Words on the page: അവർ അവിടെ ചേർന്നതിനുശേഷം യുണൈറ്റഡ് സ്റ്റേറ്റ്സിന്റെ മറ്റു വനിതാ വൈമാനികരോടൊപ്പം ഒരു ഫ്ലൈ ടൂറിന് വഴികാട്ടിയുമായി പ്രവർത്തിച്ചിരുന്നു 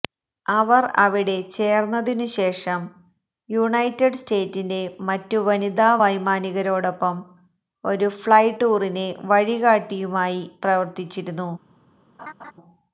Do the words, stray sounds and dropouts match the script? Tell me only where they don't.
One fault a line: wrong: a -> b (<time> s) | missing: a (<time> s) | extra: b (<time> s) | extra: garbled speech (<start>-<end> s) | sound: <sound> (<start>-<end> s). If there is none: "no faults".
sound: laugh (12.2-12.5 s)